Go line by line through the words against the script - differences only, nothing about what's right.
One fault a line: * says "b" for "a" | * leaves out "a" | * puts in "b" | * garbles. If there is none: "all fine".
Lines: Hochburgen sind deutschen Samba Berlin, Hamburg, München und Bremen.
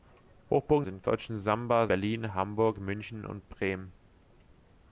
all fine